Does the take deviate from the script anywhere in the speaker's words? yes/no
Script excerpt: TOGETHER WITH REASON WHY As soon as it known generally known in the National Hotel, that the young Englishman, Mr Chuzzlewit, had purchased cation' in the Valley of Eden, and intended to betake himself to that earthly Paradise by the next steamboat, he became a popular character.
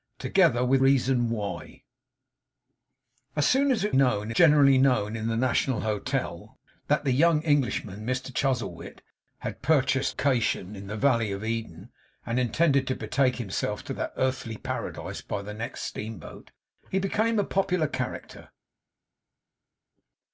no